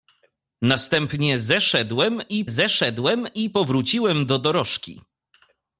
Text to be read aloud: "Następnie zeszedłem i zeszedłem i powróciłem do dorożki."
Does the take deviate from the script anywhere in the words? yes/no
no